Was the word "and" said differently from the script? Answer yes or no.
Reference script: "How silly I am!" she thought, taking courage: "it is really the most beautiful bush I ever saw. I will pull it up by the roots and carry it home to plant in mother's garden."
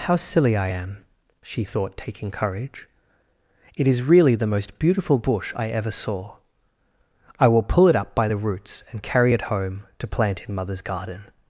no